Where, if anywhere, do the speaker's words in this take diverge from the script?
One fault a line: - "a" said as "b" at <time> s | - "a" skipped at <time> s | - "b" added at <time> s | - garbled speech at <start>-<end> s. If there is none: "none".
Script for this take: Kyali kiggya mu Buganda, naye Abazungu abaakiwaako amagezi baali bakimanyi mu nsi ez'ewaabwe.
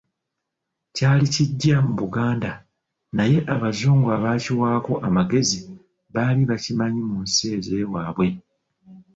none